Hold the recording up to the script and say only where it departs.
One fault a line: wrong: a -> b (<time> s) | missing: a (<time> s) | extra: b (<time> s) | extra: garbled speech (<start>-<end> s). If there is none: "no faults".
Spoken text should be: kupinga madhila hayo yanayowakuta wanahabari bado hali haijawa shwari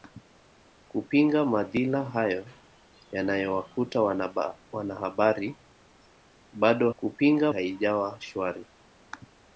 wrong: hali -> kupinga (7.0 s)